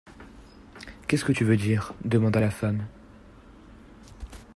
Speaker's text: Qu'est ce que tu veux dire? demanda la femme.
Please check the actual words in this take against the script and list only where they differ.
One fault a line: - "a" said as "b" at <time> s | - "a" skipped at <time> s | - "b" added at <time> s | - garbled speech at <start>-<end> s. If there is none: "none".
none